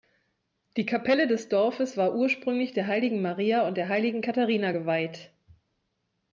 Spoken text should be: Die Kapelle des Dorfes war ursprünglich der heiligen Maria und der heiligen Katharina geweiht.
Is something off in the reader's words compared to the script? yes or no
no